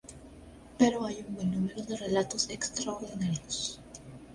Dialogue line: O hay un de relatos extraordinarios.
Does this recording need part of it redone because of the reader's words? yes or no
yes